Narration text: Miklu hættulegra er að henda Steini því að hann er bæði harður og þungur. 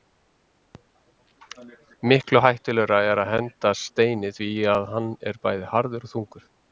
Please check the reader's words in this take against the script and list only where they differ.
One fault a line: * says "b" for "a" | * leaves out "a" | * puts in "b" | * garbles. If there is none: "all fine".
all fine